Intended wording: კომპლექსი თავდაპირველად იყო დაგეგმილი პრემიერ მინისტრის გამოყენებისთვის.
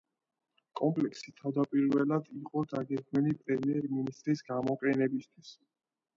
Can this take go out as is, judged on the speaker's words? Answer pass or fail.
pass